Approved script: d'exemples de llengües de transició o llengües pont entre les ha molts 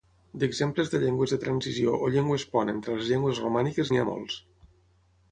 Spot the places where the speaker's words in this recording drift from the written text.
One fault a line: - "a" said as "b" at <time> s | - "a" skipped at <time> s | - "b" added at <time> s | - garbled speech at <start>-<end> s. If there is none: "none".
- "llengües romàniques n'hi" added at 3.1 s